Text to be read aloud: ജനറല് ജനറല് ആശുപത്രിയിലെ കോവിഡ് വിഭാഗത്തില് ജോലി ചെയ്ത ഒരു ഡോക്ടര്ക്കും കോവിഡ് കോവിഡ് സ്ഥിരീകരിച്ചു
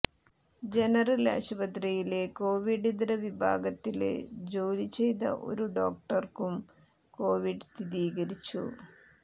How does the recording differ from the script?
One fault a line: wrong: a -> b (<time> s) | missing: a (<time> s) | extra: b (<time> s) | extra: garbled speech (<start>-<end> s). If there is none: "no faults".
missing: ജനറല് (1.3 s)
extra: ഇതര (2.9 s)
missing: കോവിഡ് (7.7 s)